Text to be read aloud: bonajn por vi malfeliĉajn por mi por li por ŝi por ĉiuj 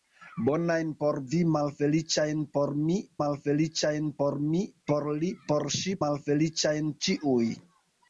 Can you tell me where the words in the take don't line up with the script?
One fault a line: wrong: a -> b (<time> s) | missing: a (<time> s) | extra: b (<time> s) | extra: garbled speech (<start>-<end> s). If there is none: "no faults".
extra: malfeliĉajn (3.2 s)
extra: mi por (4.5 s)
wrong: por -> malfeliĉajn (6.0 s)